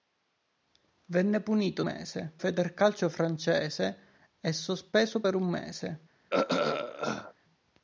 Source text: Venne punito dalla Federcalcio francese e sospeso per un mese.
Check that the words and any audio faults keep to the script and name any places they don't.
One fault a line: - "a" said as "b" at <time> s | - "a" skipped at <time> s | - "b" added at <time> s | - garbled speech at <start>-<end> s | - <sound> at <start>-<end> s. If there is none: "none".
- "dalla" said as "mese" at 1.8 s
- throat clearing at 6.3-7.3 s